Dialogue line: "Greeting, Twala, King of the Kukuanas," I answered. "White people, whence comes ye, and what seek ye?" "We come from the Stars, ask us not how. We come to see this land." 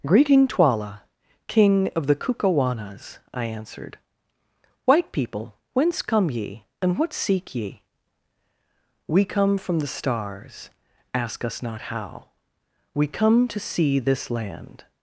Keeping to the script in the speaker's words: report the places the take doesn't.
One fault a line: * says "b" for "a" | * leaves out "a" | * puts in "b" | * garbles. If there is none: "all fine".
* says "come" for "comes"